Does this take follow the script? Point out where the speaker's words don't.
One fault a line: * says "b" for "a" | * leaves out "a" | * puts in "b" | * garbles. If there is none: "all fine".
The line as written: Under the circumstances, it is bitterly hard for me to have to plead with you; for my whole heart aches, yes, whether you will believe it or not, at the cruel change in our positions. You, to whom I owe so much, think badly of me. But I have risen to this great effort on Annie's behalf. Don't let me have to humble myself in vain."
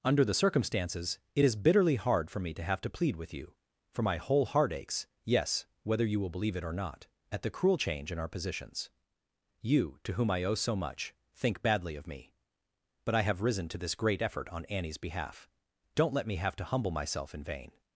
all fine